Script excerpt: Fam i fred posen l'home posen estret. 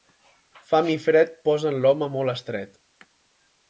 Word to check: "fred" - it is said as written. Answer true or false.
true